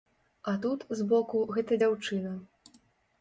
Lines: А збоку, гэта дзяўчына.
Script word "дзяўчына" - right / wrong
right